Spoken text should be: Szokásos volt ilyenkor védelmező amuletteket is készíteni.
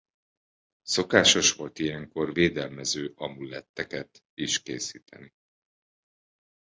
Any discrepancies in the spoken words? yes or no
no